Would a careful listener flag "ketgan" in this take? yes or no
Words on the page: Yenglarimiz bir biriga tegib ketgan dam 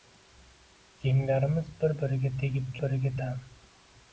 yes